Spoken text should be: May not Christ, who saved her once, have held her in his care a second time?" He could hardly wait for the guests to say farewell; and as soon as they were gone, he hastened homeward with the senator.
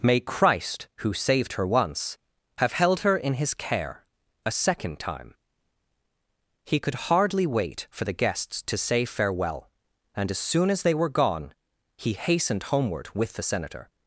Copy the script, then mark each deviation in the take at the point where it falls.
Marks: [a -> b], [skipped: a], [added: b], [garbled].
May [skipped: not] Christ, who saved her once, have held her in his care a second time?" He could hardly wait for the guests to say farewell; and as soon as they were gone, he hastened homeward with the senator.